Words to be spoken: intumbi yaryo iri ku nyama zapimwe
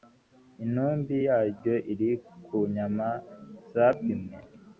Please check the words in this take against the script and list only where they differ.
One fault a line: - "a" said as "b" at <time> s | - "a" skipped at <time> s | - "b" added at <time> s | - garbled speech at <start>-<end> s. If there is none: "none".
none